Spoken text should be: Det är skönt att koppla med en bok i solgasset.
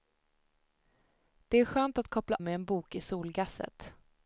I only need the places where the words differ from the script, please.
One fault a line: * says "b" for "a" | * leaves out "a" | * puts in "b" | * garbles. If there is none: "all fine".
all fine